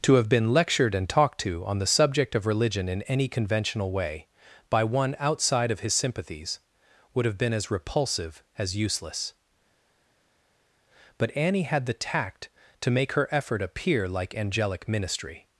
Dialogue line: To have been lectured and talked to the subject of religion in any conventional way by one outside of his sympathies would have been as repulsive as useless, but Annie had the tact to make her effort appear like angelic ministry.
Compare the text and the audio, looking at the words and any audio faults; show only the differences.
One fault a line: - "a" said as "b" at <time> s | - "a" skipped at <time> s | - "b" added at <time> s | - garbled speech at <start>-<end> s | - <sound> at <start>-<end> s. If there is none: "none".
- "on" added at 1.6 s